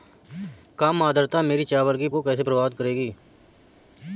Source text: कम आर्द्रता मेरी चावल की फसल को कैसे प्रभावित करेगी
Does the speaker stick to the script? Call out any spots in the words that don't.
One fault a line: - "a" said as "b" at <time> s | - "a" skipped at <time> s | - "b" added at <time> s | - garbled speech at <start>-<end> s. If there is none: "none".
- "फसल" skipped at 2.1 s